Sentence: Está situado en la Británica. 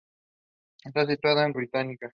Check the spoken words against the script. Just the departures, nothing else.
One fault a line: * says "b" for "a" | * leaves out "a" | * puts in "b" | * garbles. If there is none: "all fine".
all fine